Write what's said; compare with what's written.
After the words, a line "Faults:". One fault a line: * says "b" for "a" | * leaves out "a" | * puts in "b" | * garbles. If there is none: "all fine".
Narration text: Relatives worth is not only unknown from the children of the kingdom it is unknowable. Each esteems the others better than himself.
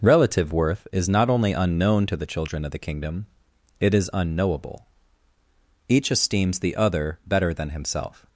Relative worth is not only unknown to the children of the kingdom it is unknowable. Each esteems the other better than himself.
Faults:
* says "Relative" for "Relatives"
* says "to" for "from"
* says "other" for "others"